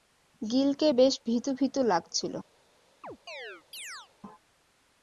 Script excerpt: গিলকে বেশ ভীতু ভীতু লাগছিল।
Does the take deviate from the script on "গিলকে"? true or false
false